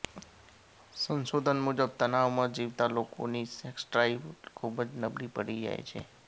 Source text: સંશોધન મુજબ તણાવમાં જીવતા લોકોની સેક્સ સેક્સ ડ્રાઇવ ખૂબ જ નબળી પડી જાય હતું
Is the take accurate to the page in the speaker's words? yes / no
no